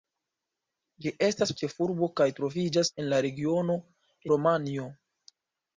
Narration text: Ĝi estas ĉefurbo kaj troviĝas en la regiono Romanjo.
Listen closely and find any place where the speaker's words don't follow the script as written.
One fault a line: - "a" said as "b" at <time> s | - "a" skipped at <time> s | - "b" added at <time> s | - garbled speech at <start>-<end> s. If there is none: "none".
none